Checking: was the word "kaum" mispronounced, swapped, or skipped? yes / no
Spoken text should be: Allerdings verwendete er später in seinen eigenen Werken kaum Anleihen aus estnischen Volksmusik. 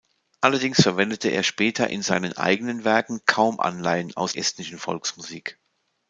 no